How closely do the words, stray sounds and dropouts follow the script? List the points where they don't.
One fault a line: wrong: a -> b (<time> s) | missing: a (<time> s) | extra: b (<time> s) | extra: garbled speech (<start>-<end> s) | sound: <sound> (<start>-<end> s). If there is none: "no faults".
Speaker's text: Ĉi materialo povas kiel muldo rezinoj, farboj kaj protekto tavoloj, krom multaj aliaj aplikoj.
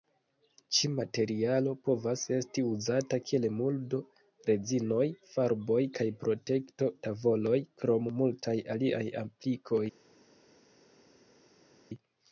extra: esti uzata (2.4 s)